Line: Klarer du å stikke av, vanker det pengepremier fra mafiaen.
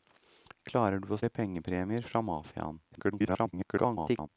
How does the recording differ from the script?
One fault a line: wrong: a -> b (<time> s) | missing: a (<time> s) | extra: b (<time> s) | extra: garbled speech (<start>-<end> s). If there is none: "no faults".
missing: stikke av vanker (1.2 s)
extra: garbled speech (2.9-4.3 s)